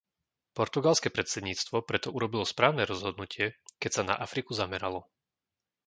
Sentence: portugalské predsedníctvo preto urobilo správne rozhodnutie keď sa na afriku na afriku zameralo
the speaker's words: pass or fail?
fail